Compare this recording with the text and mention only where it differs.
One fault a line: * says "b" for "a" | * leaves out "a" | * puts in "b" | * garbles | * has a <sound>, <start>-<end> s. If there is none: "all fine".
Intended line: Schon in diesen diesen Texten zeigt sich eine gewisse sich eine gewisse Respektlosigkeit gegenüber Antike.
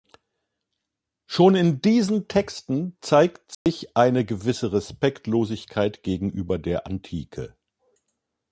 * leaves out "diesen"
* has a dropout, 3.5-3.7 s
* leaves out "sich eine gewisse"
* puts in "der"